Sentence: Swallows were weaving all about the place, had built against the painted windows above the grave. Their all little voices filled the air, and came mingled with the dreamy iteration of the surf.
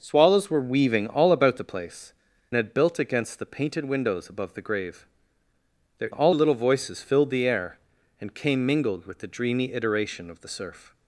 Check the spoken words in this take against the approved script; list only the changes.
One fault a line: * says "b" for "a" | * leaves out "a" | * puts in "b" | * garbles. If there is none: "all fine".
all fine